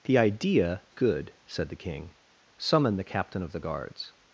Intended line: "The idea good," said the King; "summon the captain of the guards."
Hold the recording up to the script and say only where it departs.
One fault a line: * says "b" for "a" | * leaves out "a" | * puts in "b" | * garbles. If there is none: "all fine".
all fine